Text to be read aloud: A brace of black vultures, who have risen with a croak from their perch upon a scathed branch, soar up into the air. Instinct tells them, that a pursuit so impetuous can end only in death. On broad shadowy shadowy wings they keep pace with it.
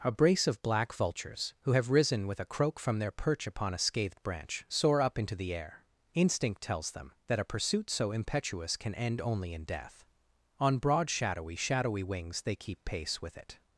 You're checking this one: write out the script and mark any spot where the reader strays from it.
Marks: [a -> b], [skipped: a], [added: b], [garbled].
A brace of black vultures, who have risen with a croak from their perch upon a scathed branch, soar up into the air. Instinct tells them, that a pursuit so impetuous can end only in death. On broad shadowy shadowy wings they keep pace with it.